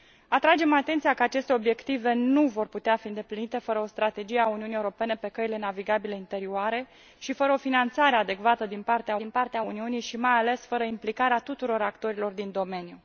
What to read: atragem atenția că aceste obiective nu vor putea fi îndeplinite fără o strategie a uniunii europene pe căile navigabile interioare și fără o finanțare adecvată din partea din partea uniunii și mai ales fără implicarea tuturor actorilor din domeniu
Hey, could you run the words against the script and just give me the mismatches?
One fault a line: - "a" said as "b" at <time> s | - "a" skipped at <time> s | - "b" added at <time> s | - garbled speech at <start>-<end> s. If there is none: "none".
none